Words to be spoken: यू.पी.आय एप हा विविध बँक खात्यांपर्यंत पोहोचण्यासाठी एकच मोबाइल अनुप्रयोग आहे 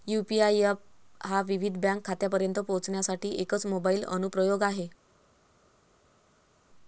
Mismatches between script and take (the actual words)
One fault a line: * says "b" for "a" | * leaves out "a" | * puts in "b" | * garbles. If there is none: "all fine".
all fine